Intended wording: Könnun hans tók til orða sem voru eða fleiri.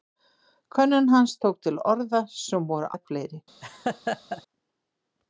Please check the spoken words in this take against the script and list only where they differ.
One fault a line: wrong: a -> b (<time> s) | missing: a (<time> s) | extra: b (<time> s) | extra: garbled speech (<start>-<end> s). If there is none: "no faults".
no faults